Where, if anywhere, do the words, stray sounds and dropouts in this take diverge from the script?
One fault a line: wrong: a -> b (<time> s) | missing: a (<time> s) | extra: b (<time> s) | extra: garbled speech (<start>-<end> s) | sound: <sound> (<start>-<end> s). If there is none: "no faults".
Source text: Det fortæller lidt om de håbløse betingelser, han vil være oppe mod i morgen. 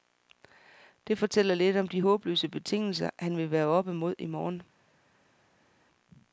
no faults